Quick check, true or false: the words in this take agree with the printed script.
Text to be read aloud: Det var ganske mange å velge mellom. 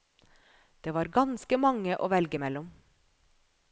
true